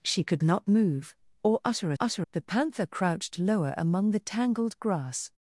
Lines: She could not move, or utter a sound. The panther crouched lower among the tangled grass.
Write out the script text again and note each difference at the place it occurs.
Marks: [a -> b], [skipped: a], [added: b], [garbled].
She could not move, or utter a [sound. -> utter] The panther crouched lower among the tangled grass.